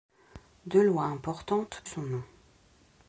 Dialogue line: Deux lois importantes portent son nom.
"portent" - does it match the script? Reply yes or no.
no